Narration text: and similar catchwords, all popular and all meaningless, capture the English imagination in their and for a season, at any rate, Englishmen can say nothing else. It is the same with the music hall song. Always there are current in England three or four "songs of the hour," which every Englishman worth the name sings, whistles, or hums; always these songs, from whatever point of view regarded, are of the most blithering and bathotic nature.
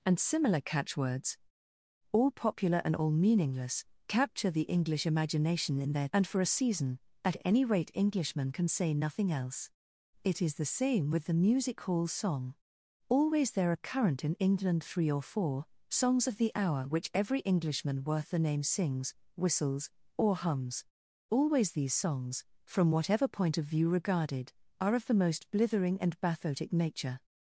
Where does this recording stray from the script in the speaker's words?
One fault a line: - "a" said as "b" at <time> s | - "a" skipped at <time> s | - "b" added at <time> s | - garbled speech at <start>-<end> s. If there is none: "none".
none